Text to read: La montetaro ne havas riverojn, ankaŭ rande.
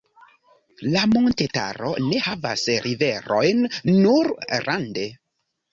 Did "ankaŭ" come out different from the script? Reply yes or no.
yes